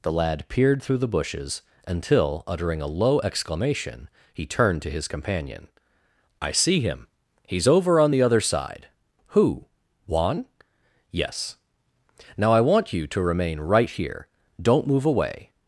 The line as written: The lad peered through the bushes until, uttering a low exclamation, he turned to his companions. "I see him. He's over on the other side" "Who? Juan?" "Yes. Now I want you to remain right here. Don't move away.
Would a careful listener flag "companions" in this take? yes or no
yes